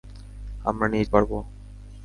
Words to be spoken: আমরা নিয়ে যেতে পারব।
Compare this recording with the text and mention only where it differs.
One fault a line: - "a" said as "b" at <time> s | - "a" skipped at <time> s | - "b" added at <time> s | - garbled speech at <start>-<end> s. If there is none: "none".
- "যেতে" skipped at 1.1 s